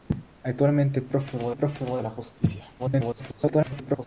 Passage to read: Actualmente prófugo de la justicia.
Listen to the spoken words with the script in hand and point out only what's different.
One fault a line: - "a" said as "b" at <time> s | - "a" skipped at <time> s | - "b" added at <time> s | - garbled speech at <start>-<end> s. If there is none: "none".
- "prófugo" added at 1.5 s
- garbled speech at 2.8-4.1 s